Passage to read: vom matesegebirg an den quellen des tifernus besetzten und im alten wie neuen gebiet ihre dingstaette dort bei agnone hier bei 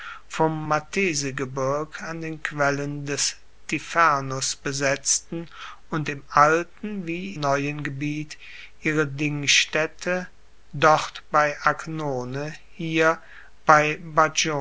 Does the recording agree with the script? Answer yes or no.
yes